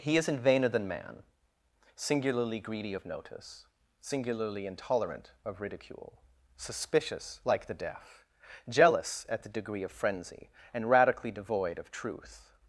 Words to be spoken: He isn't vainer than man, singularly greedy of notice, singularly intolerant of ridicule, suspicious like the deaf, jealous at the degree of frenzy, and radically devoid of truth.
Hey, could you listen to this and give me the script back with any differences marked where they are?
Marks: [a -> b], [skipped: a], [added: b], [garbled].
He isn't vainer than man, singularly greedy of notice, singularly intolerant of ridicule, suspicious like the deaf, jealous at the degree of frenzy, and radically devoid of truth.